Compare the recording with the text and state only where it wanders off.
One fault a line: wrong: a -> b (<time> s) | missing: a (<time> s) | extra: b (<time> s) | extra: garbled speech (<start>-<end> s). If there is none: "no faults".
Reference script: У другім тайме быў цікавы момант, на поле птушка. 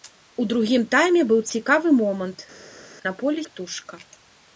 no faults